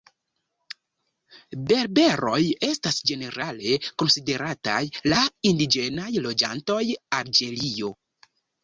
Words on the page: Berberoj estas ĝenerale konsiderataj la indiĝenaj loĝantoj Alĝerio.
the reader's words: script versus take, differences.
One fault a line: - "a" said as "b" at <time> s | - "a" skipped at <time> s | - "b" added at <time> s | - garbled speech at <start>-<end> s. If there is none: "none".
none